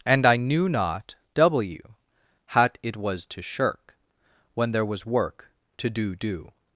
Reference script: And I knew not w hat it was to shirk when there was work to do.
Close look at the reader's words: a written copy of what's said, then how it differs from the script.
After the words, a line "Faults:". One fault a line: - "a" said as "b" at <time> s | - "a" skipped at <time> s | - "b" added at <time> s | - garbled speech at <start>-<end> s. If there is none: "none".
And I knew not w hat it was to shirk when there was work to do do.
Faults:
- "do" added at 6.2 s